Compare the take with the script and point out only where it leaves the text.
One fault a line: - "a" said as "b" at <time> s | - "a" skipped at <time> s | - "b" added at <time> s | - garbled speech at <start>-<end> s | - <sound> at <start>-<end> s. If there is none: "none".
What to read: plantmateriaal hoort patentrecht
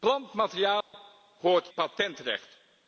- dropout at 0.8-0.9 s